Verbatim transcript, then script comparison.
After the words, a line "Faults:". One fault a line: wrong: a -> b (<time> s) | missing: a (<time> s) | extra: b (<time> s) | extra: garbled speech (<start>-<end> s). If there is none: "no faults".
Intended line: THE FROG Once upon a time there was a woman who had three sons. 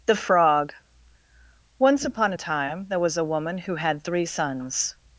THE FROG Once upon a time there was a woman who had three sons.
Faults:
no faults